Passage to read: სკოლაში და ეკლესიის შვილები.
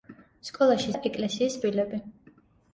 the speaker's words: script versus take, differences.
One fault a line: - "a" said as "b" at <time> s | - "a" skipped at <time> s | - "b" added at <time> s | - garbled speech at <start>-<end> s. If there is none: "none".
none